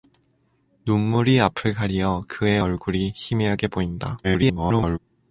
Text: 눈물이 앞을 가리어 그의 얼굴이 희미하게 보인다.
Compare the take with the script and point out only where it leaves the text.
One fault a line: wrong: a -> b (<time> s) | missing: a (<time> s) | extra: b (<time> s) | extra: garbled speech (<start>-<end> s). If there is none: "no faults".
extra: garbled speech (4.2-5.0 s)